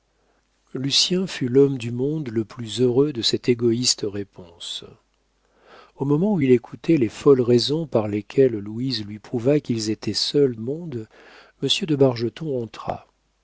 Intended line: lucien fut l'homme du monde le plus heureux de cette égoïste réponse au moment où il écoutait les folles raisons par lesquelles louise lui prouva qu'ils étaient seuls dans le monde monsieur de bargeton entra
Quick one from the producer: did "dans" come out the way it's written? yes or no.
no